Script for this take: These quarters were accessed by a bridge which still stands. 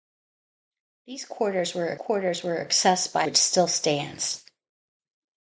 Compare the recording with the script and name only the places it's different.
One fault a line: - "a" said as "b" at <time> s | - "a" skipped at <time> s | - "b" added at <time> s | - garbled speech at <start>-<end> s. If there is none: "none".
- "quarters were" added at 1.9 s
- "a bridge" skipped at 3.3 s